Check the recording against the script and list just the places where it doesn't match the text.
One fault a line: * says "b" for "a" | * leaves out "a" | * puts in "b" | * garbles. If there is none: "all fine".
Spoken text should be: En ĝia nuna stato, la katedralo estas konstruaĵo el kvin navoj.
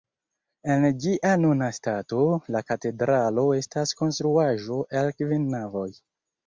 all fine